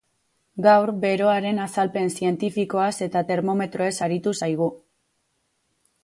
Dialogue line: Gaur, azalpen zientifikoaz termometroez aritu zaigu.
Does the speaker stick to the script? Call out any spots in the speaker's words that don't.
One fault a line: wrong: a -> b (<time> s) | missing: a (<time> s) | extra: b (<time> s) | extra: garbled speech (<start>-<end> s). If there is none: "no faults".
extra: beroaren (1.0 s)
extra: eta (3.1 s)